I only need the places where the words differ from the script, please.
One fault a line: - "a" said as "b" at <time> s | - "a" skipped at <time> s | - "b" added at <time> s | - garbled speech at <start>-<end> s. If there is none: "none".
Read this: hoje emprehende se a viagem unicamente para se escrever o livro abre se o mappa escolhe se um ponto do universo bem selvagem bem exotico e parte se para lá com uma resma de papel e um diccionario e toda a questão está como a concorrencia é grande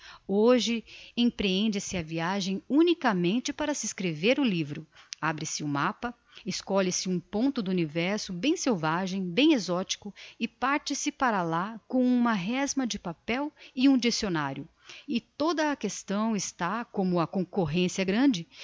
none